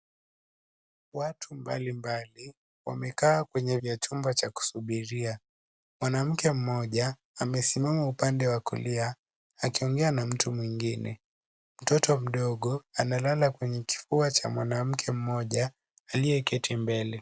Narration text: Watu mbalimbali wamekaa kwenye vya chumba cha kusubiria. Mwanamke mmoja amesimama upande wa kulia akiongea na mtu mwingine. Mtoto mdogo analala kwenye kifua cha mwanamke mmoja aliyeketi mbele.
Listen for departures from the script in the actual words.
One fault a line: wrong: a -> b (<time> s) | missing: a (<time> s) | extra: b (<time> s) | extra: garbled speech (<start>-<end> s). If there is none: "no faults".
no faults